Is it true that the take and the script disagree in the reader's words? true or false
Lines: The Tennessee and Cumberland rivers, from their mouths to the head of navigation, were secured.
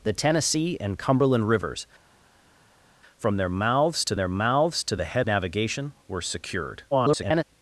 true